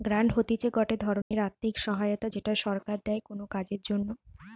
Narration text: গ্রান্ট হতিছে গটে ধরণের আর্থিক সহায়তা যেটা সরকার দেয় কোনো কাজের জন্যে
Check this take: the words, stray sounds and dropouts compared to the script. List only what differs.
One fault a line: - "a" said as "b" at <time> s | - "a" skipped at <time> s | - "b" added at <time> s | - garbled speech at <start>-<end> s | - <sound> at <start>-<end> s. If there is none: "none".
- dropout at 1.2-1.3 s